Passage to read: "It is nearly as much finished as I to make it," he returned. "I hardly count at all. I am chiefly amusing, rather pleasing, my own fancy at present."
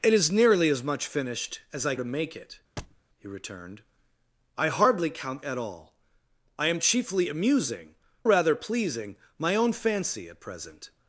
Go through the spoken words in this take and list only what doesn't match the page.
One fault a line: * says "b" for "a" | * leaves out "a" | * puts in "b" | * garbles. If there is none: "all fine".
all fine